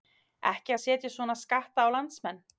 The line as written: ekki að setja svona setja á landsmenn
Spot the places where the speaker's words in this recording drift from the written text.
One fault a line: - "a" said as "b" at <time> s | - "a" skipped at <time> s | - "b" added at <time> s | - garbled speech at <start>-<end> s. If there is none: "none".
- "setja" said as "skatta" at 1.4 s